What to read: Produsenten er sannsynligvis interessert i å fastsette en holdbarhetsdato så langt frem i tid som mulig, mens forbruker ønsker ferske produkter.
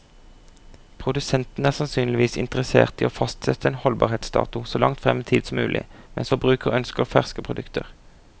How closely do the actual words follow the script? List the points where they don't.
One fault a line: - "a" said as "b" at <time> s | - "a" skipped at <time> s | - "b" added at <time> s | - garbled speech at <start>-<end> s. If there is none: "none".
none